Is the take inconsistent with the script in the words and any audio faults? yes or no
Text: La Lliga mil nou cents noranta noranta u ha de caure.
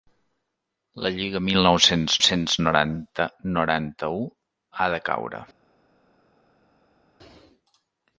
yes